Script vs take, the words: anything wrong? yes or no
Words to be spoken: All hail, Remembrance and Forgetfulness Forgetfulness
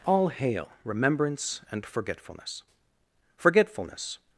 no